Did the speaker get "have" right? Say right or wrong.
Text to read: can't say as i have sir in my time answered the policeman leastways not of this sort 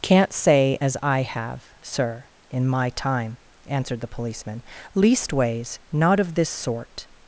right